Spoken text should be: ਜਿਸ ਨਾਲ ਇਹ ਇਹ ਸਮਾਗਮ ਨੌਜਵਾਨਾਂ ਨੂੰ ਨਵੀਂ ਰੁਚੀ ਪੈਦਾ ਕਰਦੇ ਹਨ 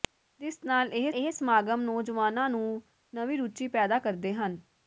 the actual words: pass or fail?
pass